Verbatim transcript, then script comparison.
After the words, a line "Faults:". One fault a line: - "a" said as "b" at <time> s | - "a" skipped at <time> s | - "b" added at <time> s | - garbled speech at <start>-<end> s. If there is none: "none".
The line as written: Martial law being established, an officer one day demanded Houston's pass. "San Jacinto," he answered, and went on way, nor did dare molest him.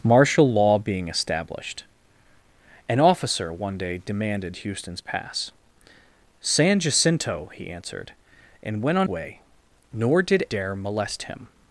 Martial law being established, an officer one day demanded Houston's pass. "San Jacinto," he answered, and went on way, nor did dare molest him.
Faults:
none